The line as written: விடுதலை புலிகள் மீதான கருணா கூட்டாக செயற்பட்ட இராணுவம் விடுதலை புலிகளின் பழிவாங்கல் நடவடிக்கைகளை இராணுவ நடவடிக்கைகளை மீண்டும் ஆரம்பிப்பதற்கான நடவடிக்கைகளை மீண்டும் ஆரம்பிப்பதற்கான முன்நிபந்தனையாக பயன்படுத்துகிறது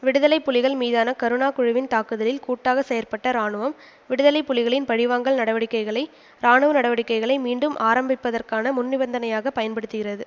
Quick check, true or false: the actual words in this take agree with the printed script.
false